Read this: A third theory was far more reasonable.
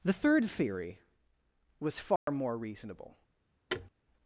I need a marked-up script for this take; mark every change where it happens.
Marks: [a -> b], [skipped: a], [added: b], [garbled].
[A -> The] third theory was far more reasonable.